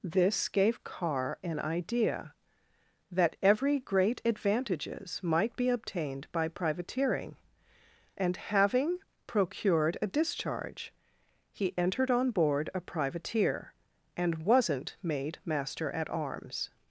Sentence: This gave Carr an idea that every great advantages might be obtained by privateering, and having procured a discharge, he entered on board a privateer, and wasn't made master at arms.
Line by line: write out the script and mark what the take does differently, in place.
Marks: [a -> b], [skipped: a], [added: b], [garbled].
This gave Carr an idea that every great advantages might be obtained by privateering, and having procured a discharge, he entered on board a privateer, and wasn't made master at arms.